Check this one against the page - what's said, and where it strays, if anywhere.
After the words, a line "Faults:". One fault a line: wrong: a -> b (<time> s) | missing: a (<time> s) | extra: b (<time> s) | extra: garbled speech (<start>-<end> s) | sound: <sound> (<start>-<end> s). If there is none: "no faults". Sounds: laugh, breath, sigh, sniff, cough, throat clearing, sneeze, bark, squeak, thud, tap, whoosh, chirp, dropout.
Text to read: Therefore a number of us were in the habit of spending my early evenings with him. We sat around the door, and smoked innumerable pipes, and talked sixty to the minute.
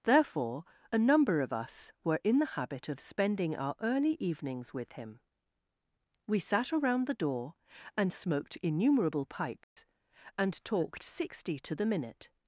Therefore a number of us were in the habit of spending our early evenings with him. We sat around the door, and smoked innumerable pipes, and talked sixty to the minute.
Faults:
wrong: my -> our (3.6 s)
sound: dropout (9.6-9.8 s)